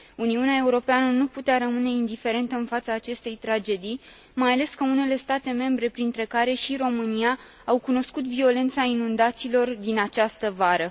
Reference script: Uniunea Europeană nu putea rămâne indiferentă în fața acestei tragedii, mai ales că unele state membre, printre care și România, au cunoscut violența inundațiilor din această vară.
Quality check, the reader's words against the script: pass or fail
pass